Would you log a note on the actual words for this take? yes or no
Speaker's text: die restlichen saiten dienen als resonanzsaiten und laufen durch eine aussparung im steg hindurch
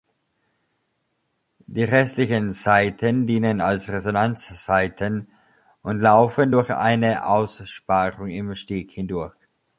no